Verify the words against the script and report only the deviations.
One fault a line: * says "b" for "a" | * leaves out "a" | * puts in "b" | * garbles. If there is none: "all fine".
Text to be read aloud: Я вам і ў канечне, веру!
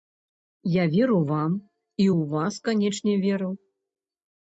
* puts in "веру"
* puts in "вас"